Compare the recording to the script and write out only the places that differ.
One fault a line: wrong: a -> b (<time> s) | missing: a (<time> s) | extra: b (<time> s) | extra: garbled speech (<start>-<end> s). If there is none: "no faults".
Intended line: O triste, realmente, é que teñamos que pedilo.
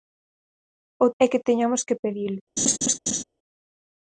missing: triste realmente (1.1 s)